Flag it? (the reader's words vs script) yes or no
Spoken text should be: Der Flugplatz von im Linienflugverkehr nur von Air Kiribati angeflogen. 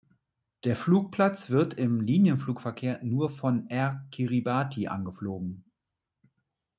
yes